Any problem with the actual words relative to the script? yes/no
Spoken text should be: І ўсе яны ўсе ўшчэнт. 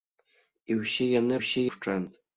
no